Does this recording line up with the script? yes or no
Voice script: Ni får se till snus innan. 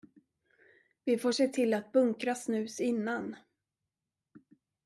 no